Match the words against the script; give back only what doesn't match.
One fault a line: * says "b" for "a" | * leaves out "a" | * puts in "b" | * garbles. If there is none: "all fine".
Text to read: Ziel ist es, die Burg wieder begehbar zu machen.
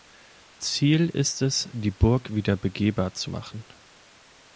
all fine